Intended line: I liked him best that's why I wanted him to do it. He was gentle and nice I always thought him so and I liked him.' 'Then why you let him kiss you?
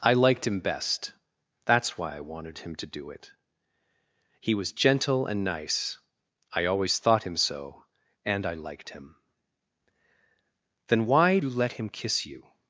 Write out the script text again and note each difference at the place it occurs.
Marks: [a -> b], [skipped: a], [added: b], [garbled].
I liked him best that's why I wanted him to do it. He was gentle and nice I always thought him so and I liked him.' 'Then why you let him kiss you?